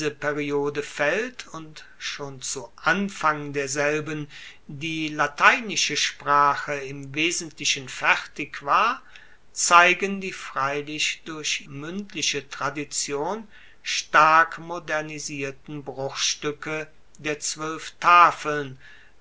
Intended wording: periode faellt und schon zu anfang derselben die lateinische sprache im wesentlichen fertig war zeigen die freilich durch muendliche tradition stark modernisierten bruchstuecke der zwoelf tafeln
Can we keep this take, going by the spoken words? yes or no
yes